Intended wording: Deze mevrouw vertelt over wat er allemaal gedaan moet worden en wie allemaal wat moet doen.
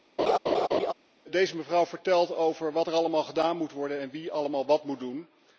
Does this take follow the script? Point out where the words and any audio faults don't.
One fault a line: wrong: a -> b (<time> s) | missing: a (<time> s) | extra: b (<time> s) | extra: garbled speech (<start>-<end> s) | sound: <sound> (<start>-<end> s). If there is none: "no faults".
sound: laugh (0.2-0.9 s)